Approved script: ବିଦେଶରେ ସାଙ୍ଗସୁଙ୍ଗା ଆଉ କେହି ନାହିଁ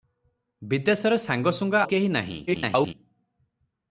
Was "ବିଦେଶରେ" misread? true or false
false